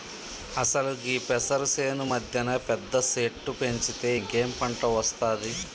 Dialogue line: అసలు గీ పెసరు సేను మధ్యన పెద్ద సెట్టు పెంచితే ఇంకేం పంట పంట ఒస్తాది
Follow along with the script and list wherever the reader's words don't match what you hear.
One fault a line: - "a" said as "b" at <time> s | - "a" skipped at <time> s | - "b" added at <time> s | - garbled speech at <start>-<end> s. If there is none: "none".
- "పంట" skipped at 4.8 s